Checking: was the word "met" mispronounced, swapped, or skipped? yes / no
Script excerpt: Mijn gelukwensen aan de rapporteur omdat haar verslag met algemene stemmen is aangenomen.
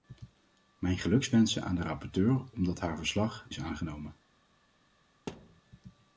yes